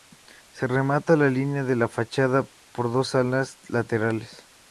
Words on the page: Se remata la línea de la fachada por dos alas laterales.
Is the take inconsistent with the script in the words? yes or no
no